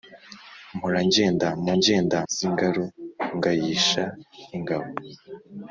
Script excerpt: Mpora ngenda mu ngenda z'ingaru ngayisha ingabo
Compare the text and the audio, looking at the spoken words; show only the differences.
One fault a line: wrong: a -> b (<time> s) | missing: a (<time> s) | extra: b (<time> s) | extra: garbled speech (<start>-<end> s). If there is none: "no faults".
no faults